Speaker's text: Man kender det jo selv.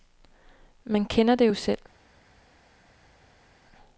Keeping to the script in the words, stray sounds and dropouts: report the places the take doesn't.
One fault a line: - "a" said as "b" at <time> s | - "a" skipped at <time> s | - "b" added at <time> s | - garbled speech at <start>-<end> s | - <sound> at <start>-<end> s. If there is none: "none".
none